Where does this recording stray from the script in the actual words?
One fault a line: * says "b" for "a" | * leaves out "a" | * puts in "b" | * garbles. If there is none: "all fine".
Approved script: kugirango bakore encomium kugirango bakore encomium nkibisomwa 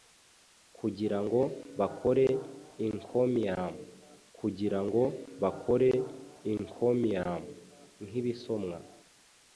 all fine